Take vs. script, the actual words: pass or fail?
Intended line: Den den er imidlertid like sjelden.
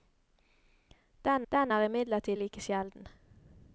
pass